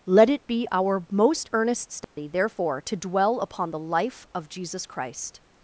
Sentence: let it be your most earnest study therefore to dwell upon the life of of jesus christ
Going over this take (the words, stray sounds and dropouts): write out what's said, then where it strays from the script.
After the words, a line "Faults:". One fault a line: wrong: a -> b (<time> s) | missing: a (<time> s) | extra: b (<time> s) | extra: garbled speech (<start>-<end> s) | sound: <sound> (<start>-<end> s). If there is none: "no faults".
let it be our most earnest study therefore to dwell upon the life of jesus christ
Faults:
wrong: your -> our (0.7 s)
sound: dropout (2.0-2.2 s)
missing: of (4.5 s)